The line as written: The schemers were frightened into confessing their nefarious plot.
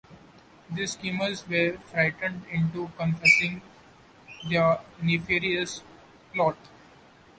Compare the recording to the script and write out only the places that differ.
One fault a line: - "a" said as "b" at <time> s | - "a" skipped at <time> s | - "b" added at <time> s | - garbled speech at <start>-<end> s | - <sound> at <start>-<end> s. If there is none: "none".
none